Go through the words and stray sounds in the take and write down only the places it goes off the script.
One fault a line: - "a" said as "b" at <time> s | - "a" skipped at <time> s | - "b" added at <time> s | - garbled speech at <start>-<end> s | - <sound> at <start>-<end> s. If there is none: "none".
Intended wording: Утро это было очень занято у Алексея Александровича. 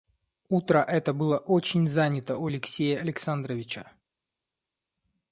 none